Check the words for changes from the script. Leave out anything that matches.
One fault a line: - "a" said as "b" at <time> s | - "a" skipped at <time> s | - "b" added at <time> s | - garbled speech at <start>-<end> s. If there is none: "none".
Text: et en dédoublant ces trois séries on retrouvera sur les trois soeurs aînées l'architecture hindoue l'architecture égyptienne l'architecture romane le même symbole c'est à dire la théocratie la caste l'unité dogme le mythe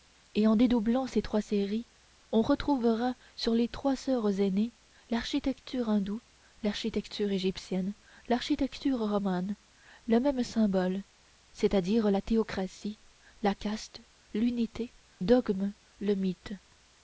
none